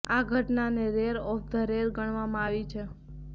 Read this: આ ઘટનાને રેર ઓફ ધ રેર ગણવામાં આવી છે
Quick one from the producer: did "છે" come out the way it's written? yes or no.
yes